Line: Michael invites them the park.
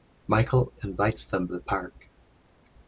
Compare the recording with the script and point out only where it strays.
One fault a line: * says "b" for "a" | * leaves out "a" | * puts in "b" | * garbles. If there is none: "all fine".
all fine